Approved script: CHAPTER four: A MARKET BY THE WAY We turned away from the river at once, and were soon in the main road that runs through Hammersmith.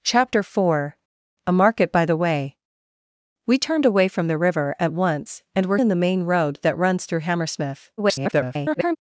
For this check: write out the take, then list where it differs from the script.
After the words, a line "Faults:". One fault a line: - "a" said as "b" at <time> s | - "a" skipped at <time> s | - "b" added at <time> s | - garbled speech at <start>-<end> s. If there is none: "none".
CHAPTER four: A MARKET BY THE WAY We turned away from the river at once, and were in the main road that runs through Hammersmith. [garbled]
Faults:
- "soon" skipped at 5.8 s
- garbled speech at 8.0-9.0 s